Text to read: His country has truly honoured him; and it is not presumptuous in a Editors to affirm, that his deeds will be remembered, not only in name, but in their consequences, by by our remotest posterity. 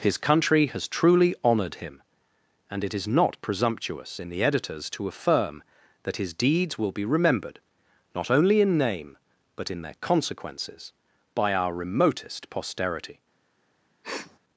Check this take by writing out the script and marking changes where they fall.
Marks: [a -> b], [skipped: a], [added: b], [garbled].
His country has truly honoured him; and it is not presumptuous in [a -> the] Editors to affirm, that his deeds will be remembered, not only in name, but in their consequences, by [skipped: by] our remotest posterity.